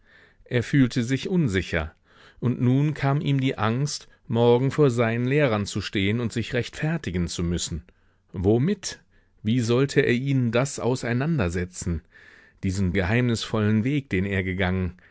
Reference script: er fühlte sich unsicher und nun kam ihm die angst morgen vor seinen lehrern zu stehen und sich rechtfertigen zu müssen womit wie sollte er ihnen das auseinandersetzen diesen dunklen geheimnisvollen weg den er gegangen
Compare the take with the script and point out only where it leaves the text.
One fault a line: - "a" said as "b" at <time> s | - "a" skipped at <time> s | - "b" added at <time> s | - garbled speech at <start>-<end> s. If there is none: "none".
- "dunklen" skipped at 12.9 s